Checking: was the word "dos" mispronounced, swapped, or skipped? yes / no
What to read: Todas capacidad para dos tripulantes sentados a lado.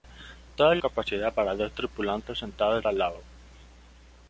no